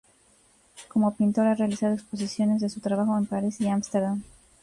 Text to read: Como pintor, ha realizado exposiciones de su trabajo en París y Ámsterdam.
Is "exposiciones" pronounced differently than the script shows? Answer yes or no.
no